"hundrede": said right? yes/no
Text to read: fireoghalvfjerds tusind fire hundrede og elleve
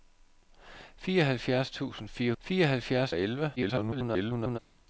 no